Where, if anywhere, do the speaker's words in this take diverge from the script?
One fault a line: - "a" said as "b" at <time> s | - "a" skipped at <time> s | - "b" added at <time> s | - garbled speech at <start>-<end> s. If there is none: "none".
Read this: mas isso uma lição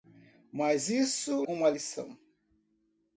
none